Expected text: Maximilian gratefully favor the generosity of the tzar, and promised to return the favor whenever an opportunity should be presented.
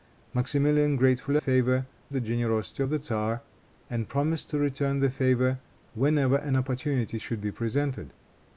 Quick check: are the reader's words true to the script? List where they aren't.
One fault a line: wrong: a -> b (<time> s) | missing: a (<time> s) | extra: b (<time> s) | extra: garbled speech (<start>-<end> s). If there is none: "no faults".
no faults